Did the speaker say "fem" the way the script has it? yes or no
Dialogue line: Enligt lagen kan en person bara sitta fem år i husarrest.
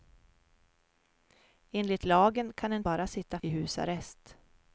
no